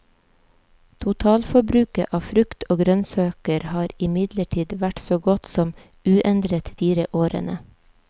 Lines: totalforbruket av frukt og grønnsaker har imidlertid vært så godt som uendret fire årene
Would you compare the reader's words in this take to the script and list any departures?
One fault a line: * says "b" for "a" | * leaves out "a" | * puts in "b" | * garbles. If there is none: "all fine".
all fine